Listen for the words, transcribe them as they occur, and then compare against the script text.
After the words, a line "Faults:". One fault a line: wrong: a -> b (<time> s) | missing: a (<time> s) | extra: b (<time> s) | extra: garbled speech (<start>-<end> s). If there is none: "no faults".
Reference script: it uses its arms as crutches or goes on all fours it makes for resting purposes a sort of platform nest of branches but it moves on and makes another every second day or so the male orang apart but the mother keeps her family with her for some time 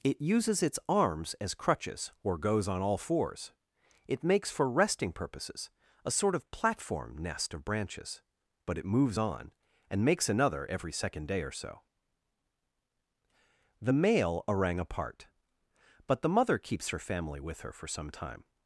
it uses its arms as crutches or goes on all fours it makes for resting purposes a sort of platform nest of branches but it moves on and makes another every second day or so the male orang apart but the mother keeps her family with her for some time
Faults:
no faults